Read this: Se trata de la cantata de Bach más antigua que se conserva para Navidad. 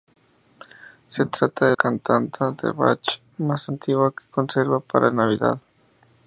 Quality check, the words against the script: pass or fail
fail